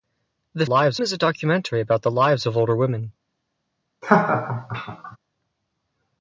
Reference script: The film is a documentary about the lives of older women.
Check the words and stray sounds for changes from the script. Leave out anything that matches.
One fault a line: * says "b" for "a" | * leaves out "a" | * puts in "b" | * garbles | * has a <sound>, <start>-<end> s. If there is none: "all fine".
* says "lives" for "film"
* has a laugh, 4.0-5.2 s